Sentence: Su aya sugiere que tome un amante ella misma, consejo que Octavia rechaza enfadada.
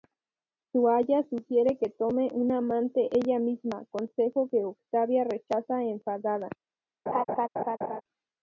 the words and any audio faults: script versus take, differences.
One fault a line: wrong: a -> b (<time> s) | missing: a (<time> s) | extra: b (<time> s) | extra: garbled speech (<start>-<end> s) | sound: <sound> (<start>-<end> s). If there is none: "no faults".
sound: laugh (7.1-8.0 s)